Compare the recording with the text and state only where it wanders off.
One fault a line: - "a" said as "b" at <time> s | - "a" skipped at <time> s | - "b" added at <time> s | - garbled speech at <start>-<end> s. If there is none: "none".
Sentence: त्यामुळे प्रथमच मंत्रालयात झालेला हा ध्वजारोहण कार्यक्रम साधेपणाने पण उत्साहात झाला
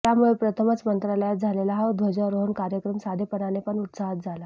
none